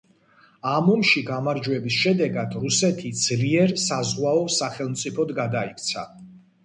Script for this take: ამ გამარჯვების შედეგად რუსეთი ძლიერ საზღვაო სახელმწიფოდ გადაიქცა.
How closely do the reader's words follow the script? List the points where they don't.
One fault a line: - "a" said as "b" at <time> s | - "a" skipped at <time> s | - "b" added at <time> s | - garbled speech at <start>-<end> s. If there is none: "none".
- "ომში" added at 0.9 s